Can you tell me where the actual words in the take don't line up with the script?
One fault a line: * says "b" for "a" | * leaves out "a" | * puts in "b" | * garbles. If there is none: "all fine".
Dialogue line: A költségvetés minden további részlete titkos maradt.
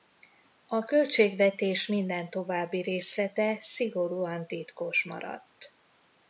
* puts in "szigorúan"